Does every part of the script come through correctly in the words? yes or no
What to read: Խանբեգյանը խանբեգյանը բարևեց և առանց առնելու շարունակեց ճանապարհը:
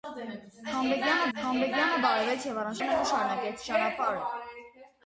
yes